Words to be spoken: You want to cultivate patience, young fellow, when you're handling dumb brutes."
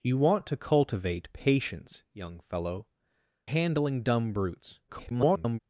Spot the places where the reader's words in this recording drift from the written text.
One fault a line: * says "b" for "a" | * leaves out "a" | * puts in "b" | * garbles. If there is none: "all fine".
* leaves out "when you're"
* garbles